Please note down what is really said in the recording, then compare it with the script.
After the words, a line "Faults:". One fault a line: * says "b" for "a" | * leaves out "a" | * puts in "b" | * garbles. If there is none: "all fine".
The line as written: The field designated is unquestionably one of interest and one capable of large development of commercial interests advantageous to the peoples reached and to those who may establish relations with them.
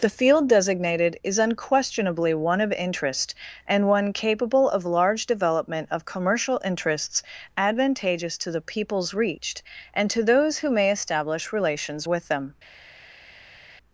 The field designated is unquestionably one of interest and one capable of large development of commercial interests advantageous to the peoples reached and to those who may establish relations with them.
Faults:
all fine